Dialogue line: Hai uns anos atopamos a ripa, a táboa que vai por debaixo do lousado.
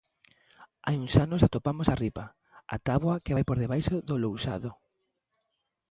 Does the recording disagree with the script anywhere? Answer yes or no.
no